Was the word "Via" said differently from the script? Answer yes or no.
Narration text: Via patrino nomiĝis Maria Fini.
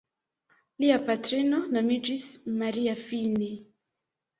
yes